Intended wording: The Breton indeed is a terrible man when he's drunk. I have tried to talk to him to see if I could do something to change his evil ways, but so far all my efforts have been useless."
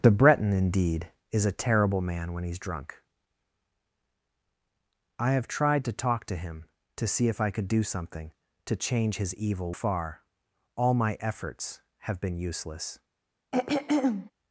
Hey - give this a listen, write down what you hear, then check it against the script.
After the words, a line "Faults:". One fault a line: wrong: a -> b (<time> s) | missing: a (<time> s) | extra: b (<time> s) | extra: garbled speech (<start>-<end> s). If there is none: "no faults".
The Breton indeed is a terrible man when he's drunk. I have tried to talk to him to see if I could do something to change his evil far all my efforts have been useless."
Faults:
missing: ways but so (9.7 s)